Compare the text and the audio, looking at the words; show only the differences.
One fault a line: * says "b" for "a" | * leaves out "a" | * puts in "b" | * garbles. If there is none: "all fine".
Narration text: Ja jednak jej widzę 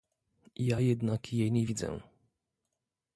* puts in "nie"